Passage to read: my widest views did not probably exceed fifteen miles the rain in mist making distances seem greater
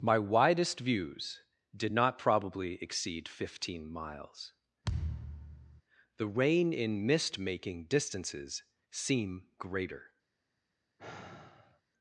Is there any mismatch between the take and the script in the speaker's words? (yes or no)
no